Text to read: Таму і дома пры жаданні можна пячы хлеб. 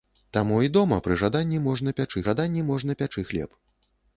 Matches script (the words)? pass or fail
fail